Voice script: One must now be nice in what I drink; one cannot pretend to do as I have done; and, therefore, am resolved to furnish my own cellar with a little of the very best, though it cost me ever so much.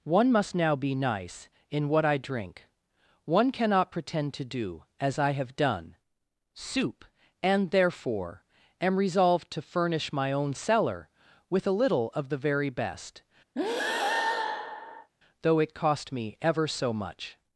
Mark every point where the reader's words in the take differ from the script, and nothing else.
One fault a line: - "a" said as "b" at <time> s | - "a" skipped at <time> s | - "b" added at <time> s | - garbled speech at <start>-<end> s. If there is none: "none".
- "soup" added at 6.5 s